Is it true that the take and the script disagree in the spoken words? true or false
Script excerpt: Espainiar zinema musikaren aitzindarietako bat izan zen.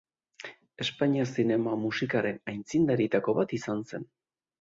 false